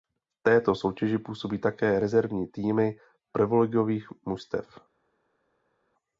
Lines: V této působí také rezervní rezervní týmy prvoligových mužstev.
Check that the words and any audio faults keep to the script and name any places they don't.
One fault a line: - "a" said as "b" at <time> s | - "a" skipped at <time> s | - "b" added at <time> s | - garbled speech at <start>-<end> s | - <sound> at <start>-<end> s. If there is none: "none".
- "soutěži" added at 0.8 s
- "rezervní" skipped at 2.5 s